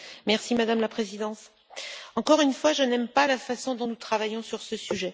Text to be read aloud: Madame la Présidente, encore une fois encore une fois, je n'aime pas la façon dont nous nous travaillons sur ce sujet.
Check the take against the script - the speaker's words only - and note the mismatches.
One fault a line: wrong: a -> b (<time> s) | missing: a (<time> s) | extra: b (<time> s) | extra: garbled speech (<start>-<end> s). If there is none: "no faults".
missing: encore une fois (2.7 s)
missing: nous (4.0 s)